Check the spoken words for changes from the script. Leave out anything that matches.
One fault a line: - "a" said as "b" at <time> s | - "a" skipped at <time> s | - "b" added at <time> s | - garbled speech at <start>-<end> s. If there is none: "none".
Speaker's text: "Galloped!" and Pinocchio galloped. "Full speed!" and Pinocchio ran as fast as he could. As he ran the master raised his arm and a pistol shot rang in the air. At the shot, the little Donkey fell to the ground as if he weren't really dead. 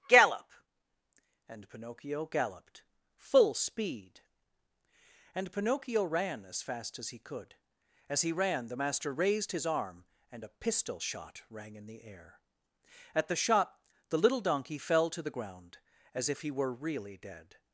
- "Galloped" said as "Gallop" at 0.1 s
- "weren't" said as "were" at 16.5 s